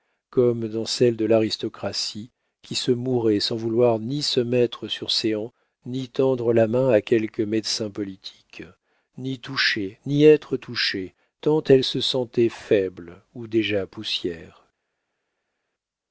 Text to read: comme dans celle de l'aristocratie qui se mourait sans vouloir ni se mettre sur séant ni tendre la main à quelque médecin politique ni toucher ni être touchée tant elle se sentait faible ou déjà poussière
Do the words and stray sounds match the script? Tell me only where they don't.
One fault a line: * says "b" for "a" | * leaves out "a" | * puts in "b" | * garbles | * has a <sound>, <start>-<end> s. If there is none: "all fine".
all fine